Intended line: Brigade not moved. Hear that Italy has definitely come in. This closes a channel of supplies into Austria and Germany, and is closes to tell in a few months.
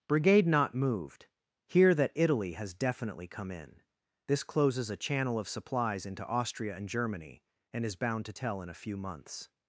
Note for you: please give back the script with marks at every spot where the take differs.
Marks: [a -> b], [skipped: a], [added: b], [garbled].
Brigade not moved. Hear that Italy has definitely come in. This closes a channel of supplies into Austria and Germany, and is [closes -> bound] to tell in a few months.